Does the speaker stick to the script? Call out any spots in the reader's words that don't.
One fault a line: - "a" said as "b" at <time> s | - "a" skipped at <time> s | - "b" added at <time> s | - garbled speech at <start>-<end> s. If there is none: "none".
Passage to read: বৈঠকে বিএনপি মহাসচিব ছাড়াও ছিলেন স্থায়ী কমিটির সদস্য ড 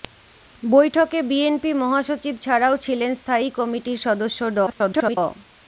- garbled speech at 4.7-5.2 s